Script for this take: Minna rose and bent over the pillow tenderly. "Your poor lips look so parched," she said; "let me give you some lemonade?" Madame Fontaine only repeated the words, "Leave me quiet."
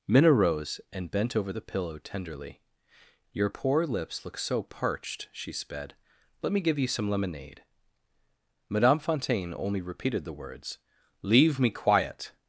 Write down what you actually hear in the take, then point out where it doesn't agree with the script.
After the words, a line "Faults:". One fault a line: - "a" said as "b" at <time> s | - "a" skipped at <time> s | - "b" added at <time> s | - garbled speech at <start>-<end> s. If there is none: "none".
Minna rose and bent over the pillow tenderly. "Your poor lips look so parched," she sped; "let me give you some lemonade?" Madame Fontaine only repeated the words, "Leave me quiet."
Faults:
- "said" said as "sped" at 5.5 s